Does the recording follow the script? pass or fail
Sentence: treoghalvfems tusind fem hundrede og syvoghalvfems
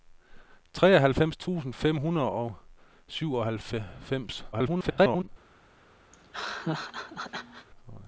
fail